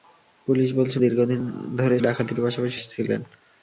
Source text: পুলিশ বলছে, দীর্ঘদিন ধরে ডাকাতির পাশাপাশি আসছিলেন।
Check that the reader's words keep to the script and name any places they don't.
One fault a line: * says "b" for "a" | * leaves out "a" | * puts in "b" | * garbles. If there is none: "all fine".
all fine